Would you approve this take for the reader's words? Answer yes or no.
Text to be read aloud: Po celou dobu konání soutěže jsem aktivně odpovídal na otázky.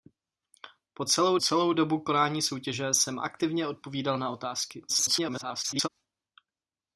no